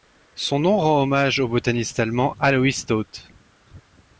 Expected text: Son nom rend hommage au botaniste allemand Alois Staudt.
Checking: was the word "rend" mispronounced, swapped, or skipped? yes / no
no